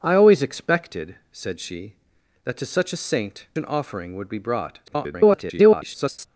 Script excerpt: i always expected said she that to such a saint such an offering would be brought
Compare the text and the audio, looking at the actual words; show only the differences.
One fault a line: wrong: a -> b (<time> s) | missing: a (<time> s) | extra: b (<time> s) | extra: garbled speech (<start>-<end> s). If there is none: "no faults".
missing: such (3.5 s)
extra: garbled speech (4.9-6.3 s)